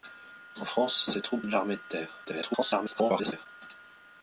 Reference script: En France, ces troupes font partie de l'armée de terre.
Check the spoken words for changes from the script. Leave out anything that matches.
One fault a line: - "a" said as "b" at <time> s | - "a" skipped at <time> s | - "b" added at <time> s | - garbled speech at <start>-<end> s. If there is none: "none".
- "font partie" skipped at 1.4 s
- garbled speech at 2.2-3.5 s